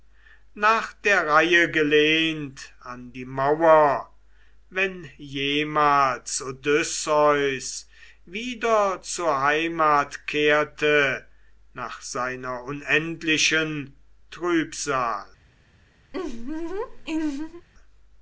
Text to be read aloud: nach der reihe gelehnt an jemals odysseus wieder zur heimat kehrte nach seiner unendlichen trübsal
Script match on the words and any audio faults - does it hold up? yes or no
no